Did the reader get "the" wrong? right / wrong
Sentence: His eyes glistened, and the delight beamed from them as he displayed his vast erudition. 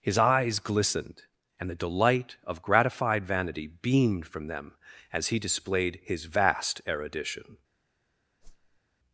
right